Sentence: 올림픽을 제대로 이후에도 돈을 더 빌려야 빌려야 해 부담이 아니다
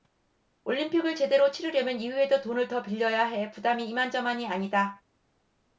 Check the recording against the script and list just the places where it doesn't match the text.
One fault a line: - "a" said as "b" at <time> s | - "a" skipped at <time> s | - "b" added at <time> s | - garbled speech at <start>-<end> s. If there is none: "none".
- "치르려면" added at 1.5 s
- "빌려야" skipped at 3.2 s
- "이만저만이" added at 3.9 s